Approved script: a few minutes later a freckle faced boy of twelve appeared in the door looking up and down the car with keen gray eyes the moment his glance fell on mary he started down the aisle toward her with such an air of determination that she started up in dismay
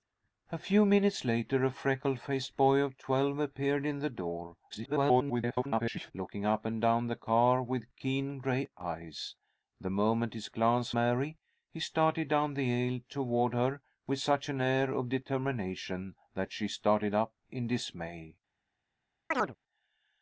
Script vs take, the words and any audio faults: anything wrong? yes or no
yes